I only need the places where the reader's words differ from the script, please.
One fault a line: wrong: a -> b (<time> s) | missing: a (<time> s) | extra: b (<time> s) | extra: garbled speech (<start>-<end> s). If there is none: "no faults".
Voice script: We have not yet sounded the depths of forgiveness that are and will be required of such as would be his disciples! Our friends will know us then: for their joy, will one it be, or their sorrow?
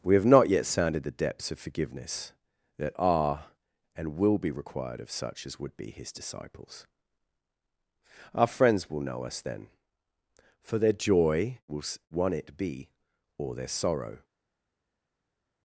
no faults